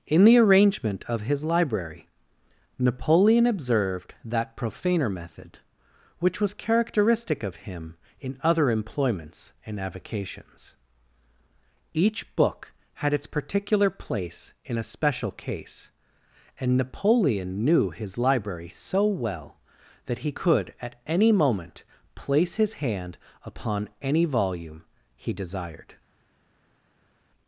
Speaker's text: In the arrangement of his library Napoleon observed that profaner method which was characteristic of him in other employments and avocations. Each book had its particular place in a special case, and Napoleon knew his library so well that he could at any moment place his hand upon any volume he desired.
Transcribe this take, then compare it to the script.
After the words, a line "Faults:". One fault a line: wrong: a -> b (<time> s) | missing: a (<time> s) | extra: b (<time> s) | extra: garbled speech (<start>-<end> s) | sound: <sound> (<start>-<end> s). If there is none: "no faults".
In the arrangement of his library Napoleon observed that profaner method which was characteristic of him in other employments and avocations. Each book had its particular place in a special case, and Napoleon knew his library so well that he could at any moment place his hand upon any volume he desired.
Faults:
no faults